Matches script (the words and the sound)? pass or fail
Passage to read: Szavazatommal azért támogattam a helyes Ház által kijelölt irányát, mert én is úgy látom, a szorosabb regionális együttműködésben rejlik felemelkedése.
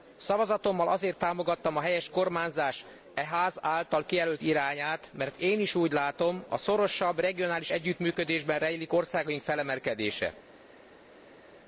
fail